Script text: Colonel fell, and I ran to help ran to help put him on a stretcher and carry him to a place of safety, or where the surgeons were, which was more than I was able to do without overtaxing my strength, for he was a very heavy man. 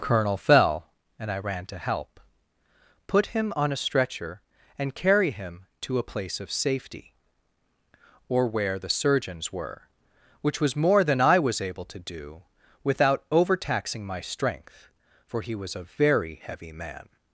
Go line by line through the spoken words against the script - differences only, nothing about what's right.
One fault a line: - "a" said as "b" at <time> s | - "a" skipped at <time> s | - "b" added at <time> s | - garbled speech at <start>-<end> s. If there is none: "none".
- "ran to help" skipped at 2.2 s